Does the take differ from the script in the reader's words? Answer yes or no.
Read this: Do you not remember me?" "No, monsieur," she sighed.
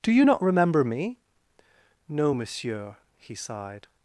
yes